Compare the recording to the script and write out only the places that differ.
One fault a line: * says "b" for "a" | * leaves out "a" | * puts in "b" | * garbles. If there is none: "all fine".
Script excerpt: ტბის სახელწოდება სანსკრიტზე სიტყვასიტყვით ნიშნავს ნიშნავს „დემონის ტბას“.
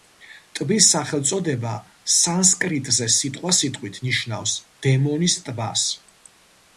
* leaves out "ნიშნავს"